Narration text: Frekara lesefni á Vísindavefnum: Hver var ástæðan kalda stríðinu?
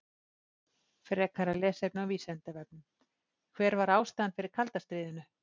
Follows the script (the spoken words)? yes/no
no